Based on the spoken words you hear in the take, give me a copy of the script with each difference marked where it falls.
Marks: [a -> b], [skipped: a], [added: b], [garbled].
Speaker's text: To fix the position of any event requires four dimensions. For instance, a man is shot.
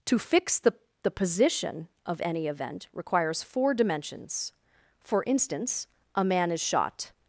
To fix the [added: the] position of any event requires four dimensions. For instance, a man is shot.